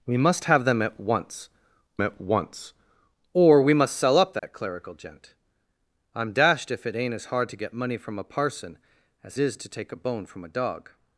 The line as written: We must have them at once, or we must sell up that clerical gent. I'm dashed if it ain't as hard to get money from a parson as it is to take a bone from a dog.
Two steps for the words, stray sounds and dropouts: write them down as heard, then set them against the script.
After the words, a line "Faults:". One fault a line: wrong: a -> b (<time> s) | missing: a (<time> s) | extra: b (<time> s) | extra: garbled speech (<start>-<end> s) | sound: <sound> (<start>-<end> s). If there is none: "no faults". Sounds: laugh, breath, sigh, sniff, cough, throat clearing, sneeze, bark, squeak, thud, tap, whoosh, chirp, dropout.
We must have them at once at once, or we must sell up that clerical gent. I'm dashed if it ain't as hard to get money from a parson as is to take a bone from a dog.
Faults:
extra: at once (2.0 s)
sound: dropout (4.4-4.4 s)
missing: it (9.4 s)